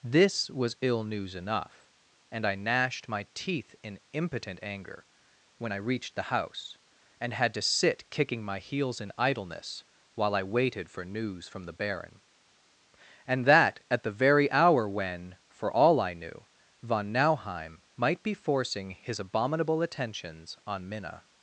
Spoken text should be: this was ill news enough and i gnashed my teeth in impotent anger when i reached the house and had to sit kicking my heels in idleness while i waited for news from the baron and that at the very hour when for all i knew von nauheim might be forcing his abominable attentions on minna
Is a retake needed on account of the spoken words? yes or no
no